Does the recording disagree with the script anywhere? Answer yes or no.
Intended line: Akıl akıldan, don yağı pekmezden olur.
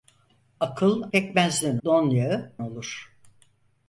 yes